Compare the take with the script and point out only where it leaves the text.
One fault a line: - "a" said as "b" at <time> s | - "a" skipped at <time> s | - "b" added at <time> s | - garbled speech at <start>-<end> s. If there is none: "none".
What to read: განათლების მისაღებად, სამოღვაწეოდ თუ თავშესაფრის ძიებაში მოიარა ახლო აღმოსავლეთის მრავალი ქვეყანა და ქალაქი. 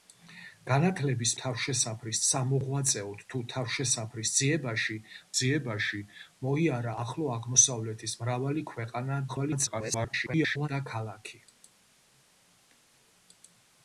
- "მისაღებად" said as "თავშესაფრის" at 1.4 s
- "ძიებაში" added at 5.4 s
- garbled speech at 9.3-10.7 s